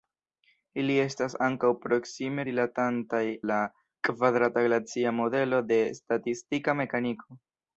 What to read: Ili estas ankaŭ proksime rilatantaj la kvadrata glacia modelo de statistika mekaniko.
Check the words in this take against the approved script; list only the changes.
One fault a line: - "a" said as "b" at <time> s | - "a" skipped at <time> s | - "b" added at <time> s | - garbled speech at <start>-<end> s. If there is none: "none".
none